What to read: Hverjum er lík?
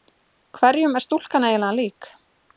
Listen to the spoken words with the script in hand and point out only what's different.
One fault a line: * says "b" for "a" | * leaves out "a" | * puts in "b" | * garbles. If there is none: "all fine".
* puts in "stúlkan eiginlega"